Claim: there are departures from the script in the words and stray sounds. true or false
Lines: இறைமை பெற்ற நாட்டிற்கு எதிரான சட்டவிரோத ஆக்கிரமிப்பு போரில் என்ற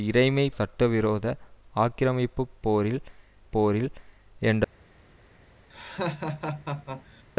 true